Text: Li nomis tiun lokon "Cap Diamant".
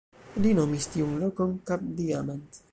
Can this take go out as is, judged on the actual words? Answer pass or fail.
pass